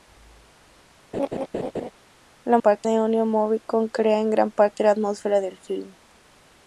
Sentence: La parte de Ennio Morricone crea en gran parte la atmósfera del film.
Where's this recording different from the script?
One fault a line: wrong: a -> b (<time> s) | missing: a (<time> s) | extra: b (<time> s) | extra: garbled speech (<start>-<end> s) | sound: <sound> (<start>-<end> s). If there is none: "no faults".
sound: laugh (1.1-1.9 s)